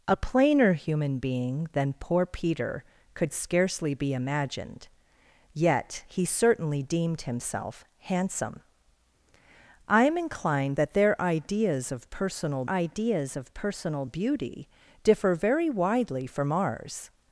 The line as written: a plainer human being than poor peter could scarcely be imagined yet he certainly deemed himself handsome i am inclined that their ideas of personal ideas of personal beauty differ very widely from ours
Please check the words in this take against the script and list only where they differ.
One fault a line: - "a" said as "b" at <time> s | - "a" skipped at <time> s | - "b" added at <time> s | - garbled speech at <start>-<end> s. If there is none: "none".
none